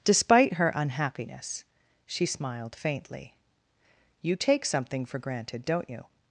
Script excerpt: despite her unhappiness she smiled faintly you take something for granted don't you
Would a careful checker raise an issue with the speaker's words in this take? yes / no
no